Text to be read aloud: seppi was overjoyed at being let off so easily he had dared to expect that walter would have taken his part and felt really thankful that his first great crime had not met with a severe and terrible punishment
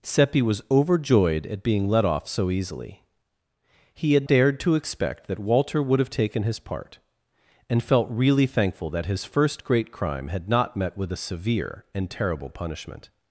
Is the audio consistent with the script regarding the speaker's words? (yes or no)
yes